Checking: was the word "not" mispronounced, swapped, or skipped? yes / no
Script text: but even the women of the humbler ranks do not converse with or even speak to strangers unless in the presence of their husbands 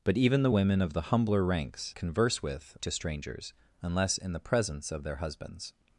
yes